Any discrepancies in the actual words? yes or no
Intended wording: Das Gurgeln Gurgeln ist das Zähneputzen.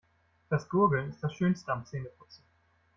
yes